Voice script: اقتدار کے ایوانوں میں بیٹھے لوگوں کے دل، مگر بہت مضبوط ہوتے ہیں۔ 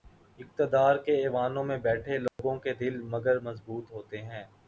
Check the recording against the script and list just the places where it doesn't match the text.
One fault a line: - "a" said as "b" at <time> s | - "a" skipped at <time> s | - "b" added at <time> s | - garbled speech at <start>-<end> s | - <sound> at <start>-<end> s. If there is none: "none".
- dropout at 2.3-2.4 s
- "بہت" skipped at 3.4 s